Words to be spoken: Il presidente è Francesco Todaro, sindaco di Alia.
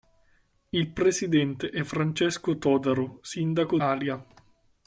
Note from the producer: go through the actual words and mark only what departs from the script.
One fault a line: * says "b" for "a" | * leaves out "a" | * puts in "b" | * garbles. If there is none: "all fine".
* leaves out "di"